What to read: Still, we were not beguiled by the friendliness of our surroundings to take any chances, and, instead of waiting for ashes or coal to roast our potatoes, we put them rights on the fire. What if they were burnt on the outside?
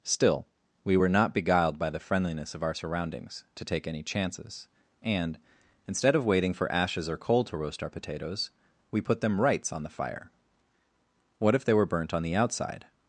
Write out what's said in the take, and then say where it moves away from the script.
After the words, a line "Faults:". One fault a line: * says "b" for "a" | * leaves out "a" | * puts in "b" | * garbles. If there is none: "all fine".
Still, we were not beguiled by the friendliness of our surroundings to take any chances, and, instead of waiting for ashes or coal to roast our potatoes, we put them rights on the fire. What if they were burnt on the outside?
Faults:
all fine